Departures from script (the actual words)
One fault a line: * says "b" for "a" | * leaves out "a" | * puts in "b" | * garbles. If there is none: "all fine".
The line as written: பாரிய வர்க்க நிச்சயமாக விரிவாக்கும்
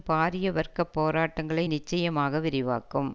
* puts in "போராட்டங்களை"